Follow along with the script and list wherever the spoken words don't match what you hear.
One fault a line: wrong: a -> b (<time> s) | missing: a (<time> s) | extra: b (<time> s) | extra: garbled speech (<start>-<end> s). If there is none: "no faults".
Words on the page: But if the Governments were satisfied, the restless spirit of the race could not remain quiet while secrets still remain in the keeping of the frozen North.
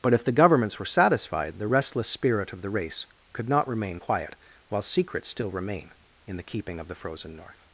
no faults